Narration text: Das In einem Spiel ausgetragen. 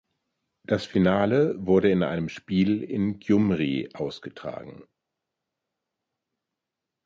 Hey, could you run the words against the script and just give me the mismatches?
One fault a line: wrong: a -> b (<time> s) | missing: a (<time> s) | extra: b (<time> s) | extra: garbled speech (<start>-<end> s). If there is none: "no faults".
extra: Finale wurde (0.9 s)
extra: in Gjumri (2.8 s)